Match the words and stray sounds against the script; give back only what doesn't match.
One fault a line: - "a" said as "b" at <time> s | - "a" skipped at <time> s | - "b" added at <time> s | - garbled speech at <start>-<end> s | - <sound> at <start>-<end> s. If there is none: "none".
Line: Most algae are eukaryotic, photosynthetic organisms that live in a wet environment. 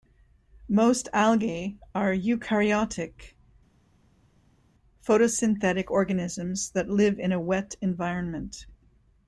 none